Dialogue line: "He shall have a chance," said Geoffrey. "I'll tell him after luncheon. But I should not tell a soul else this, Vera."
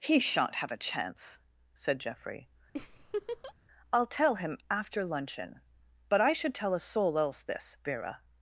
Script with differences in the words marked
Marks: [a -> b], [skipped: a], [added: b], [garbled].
"He [shall -> shan't] have a chance," said Geoffrey. "I'll tell him after luncheon. But I should [skipped: not] tell a soul else this, Vera."